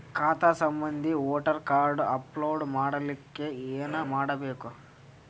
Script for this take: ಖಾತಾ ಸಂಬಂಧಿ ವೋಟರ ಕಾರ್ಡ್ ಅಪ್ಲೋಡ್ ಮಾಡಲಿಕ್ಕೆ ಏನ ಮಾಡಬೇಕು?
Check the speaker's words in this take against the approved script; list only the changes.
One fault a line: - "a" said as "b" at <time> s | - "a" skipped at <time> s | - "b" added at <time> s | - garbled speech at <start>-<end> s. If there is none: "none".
none